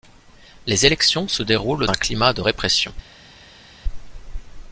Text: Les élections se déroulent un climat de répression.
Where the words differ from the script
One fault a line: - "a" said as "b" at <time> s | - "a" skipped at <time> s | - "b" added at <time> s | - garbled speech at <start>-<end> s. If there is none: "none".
none